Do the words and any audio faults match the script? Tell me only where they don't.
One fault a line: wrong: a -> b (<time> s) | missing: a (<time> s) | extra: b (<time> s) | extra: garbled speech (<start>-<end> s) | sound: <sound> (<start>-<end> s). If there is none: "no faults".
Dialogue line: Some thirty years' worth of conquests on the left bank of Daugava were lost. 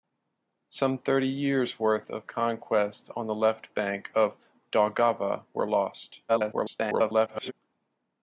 extra: garbled speech (6.3-7.5 s)